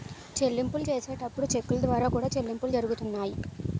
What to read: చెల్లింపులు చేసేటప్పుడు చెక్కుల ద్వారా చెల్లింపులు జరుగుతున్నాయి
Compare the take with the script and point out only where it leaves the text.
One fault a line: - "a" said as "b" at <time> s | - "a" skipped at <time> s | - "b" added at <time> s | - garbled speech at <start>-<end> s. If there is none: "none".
- "కూడా" added at 2.1 s